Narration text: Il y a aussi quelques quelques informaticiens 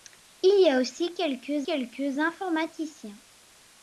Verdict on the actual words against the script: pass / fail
pass